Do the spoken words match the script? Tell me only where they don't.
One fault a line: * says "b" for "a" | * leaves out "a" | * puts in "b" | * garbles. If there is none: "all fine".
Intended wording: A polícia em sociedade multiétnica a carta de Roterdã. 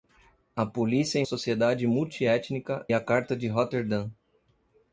all fine